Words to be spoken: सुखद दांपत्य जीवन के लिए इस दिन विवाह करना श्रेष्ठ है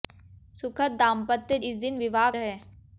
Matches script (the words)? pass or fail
fail